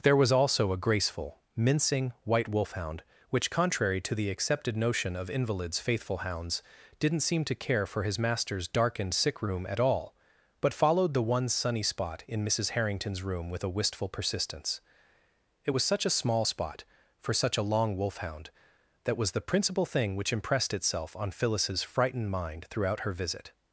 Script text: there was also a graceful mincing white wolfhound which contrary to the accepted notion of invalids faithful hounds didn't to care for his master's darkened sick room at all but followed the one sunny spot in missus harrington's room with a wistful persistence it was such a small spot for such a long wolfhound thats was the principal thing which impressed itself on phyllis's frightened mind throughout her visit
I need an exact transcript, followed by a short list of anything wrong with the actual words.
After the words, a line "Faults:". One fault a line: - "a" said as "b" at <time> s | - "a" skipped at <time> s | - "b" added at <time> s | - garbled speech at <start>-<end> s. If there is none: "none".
there was also a graceful mincing white wolfhound which contrary to the accepted notion of invalids faithful hounds didn't seem to care for his master's darkened sick room at all but followed the one sunny spot in missus harrington's room with a wistful persistence it was such a small spot for such a long wolfhound that was the principal thing which impressed itself on phyllis's frightened mind throughout her visit
Faults:
- "seem" added at 7.2 s
- "thats" said as "that" at 19.0 s